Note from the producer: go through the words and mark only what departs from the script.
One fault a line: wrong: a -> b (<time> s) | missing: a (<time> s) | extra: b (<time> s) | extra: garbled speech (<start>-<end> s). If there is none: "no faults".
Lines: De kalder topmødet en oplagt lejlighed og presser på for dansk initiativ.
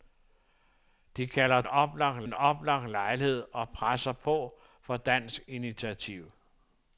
wrong: topmødet -> oplagt (1.7 s)